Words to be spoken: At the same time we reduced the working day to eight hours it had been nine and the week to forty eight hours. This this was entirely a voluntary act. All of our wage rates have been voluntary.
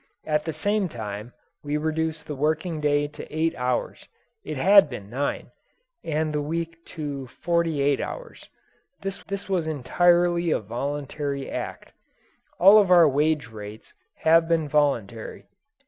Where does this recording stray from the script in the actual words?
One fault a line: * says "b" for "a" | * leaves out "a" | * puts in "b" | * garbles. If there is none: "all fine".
all fine